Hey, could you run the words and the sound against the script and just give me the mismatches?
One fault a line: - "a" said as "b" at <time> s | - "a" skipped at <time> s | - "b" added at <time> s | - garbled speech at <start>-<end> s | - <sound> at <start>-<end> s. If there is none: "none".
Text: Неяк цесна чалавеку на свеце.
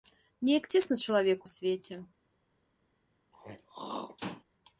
- "на" skipped at 1.5 s
- throat clearing at 3.3-4.4 s